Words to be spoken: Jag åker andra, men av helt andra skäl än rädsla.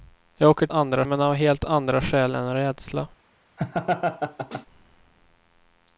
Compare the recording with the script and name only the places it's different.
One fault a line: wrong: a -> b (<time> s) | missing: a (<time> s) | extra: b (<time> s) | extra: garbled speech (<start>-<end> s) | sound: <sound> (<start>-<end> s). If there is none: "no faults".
sound: laugh (3.6-4.7 s)